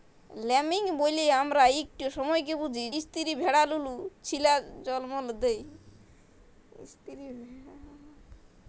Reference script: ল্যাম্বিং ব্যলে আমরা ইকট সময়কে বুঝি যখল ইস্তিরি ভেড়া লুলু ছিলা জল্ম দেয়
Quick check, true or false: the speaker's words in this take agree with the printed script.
false